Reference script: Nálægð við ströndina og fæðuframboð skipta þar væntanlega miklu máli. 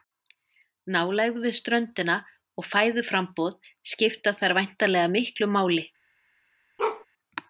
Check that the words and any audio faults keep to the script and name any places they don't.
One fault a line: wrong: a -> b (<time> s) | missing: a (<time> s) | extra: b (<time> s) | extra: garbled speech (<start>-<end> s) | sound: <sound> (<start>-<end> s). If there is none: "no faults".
sound: bark (6.8-7.1 s)